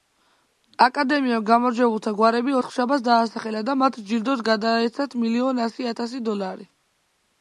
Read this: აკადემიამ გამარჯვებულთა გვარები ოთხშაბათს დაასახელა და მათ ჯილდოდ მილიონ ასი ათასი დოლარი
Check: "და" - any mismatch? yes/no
no